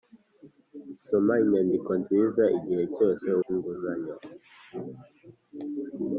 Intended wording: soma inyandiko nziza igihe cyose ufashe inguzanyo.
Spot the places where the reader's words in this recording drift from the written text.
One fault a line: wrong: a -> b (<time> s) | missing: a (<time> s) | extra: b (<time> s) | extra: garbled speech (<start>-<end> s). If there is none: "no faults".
missing: ufashe (3.3 s)